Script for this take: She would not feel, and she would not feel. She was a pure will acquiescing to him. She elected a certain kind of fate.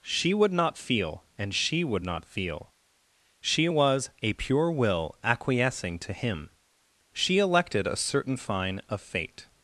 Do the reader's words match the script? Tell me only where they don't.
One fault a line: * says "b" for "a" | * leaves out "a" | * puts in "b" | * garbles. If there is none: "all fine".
* says "fine" for "kind"